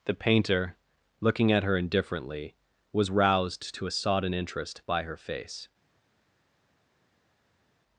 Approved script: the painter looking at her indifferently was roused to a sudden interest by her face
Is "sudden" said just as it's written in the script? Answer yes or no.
no